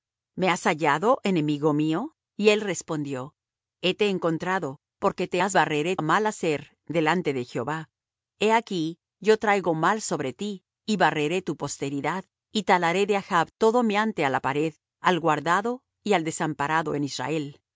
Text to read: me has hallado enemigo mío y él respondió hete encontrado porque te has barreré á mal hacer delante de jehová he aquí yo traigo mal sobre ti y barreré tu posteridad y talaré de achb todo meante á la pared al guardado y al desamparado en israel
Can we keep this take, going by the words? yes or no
yes